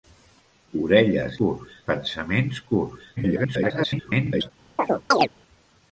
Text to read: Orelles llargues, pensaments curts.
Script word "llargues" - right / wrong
wrong